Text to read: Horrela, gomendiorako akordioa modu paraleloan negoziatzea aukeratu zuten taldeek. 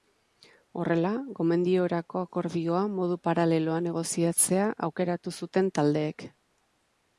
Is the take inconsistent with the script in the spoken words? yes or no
no